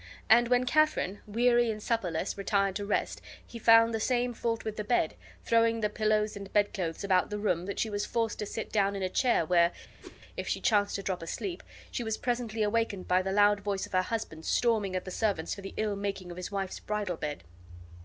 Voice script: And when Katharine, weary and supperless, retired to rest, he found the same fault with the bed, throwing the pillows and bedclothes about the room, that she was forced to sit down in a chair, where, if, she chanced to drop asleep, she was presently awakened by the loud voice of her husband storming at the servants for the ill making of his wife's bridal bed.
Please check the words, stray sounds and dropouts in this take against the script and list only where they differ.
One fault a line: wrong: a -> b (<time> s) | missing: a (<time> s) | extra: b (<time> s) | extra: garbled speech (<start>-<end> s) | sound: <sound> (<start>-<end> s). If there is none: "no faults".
sound: whoosh (10.0-10.2 s)